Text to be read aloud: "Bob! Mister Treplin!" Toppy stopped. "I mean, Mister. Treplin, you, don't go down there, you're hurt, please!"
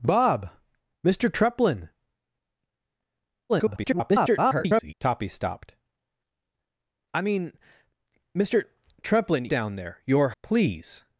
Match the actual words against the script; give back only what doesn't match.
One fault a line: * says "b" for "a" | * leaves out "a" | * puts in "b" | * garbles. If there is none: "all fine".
* garbles
* leaves out "you don't go"
* leaves out "hurt"